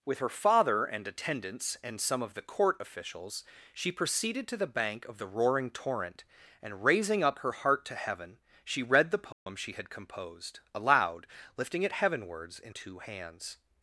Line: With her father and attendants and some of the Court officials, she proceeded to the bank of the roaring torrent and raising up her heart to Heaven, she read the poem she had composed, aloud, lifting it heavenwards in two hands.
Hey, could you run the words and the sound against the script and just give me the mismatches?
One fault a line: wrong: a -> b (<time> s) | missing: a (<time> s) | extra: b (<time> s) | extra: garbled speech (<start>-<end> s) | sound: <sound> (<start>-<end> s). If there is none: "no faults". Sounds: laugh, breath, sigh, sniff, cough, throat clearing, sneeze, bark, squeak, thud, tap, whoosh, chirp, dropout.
sound: dropout (9.3-9.5 s)